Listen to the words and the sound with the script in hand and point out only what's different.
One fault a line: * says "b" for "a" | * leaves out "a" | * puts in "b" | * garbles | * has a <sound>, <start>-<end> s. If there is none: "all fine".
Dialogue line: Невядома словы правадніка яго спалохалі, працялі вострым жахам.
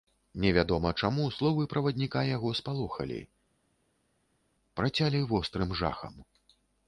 * puts in "чаму"